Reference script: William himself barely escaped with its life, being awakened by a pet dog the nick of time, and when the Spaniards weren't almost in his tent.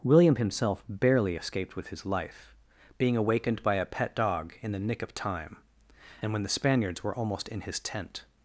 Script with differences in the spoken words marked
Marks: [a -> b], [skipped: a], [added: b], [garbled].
William himself barely escaped with [its -> his] life, being awakened by a pet dog [added: in] the nick of time, and when the Spaniards [weren't -> were] almost in his tent.